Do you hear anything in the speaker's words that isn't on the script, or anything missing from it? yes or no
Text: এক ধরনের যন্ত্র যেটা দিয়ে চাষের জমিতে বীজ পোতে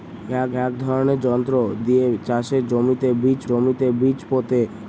yes